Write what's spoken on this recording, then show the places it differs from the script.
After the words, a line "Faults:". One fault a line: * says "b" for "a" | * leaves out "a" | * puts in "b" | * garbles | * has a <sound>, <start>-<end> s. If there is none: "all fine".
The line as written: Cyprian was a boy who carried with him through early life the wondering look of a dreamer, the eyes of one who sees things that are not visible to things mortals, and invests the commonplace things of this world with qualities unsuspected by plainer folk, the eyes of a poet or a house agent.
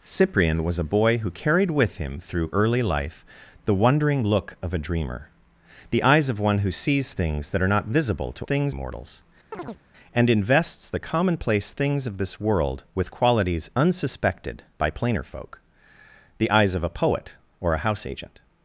Cyprian was a boy who carried with him through early life the wondering look of a dreamer, the eyes of one who sees things that are not visible to things mortals, and invests the commonplace things of this world with qualities unsuspected by plainer folk, the eyes of a poet or a house agent.
Faults:
* has a chirp, 9.5-9.8 s